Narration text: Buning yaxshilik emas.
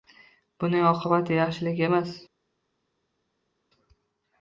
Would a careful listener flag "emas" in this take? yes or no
no